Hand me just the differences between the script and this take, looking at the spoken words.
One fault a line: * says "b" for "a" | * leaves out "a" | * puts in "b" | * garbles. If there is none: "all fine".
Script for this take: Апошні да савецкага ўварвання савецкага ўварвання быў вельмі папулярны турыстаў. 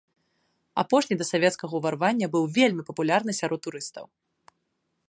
* leaves out "савецкага ўварвання"
* puts in "сярод"